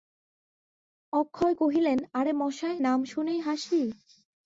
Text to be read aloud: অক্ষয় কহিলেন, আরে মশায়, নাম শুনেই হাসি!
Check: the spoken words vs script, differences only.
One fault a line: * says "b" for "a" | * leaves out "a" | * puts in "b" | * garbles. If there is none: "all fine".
all fine